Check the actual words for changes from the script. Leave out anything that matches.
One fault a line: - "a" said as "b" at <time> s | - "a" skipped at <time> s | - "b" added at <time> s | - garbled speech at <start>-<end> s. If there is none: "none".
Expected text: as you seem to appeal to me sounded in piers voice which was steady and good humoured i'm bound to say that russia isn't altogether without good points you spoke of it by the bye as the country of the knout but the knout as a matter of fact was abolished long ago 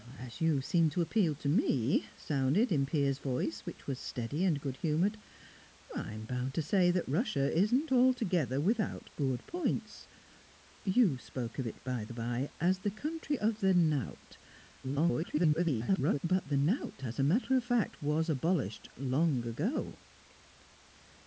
- garbled speech at 14.8-16.2 s